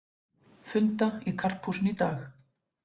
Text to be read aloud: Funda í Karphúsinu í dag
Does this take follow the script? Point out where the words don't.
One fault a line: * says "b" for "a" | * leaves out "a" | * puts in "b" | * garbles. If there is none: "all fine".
all fine